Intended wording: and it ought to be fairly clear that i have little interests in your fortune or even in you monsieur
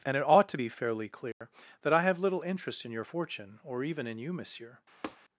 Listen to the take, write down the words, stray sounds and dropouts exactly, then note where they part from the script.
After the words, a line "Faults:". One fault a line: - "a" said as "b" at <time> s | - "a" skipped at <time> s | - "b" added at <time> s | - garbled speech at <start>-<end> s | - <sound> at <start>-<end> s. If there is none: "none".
and it ought to be fairly clear that i have little interest in your fortune or even in you monsieur
Faults:
- dropout at 1.3-1.4 s
- "interests" said as "interest" at 2.4 s
- tap at 5.0-5.2 s